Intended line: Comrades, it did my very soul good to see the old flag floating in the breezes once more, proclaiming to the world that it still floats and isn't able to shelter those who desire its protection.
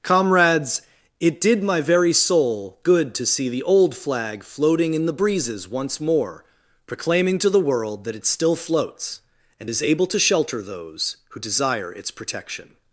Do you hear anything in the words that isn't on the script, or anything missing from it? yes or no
yes